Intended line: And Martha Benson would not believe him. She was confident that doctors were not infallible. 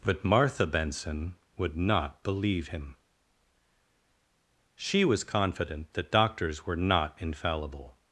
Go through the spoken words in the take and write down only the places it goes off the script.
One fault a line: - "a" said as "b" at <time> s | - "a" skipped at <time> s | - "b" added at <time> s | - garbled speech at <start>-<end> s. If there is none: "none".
- "And" said as "But" at 0.0 s